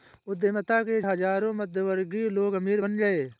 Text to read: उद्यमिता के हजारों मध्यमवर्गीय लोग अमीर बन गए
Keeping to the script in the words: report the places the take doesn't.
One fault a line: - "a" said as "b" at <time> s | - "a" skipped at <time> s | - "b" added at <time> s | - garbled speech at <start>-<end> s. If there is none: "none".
none